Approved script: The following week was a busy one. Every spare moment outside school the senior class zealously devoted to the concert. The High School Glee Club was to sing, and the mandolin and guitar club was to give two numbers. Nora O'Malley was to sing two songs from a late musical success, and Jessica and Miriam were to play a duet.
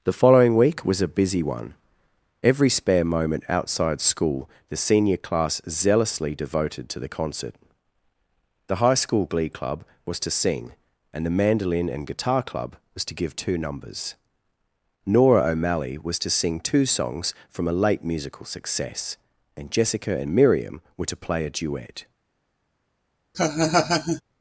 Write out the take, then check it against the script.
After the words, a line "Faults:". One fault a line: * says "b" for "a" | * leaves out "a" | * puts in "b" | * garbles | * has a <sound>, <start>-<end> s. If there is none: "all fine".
The following week was a busy one. Every spare moment outside school the senior class zealously devoted to the concert. The High School Glee Club was to sing, and the mandolin and guitar club was to give two numbers. Nora O'Malley was to sing two songs from a late musical success, and Jessica and Miriam were to play a duet.
Faults:
* has a laugh, 23.3-24.2 s